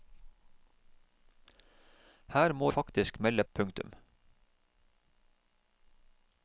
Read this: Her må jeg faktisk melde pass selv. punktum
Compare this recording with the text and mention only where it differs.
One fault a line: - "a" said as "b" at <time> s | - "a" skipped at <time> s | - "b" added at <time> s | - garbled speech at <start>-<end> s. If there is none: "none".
- "jeg" skipped at 2.7 s
- "pass selv" skipped at 3.4 s